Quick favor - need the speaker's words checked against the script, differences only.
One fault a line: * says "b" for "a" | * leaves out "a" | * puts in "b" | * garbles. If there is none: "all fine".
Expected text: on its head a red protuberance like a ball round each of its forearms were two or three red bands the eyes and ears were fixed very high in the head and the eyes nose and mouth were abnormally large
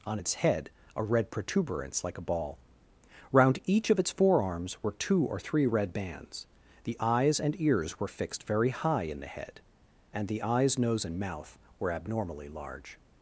all fine